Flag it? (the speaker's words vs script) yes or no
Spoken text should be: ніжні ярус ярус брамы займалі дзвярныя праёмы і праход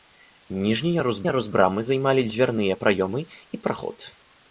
no